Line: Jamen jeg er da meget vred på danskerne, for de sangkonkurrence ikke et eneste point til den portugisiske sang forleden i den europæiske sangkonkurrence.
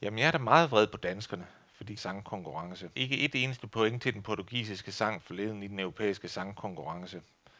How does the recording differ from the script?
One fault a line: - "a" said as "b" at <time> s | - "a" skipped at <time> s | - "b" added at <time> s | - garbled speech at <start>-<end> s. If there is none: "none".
none